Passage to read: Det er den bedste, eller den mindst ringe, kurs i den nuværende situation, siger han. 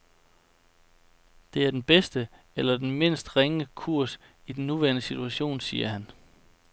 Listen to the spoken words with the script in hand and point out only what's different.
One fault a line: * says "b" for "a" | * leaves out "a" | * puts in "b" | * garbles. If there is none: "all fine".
all fine